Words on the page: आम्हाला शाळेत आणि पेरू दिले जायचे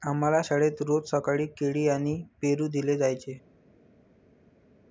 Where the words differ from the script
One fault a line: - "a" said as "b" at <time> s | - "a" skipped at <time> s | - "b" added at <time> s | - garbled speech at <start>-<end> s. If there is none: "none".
- "रोज सकाळी केळी" added at 0.8 s